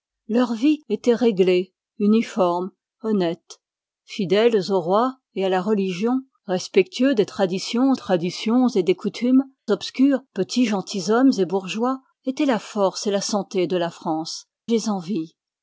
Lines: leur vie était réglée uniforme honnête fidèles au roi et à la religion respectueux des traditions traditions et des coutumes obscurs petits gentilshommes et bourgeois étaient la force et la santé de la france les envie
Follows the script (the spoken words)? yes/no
yes